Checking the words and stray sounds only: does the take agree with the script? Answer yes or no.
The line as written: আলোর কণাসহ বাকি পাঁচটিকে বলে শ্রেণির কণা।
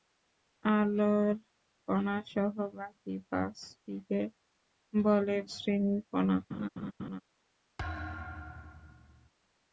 no